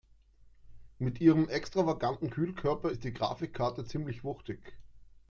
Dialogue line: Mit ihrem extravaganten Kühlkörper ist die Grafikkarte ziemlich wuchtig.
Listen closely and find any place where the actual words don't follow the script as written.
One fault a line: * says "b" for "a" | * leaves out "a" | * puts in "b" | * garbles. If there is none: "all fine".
all fine